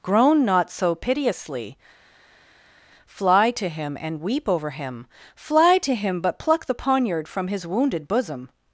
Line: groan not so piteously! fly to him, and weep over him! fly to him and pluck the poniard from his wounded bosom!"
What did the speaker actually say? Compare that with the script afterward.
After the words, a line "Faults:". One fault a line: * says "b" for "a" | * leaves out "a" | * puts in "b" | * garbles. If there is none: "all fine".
groan not so piteously! fly to him, and weep over him! fly to him but pluck the poniard from his wounded bosom!"
Faults:
* says "but" for "and"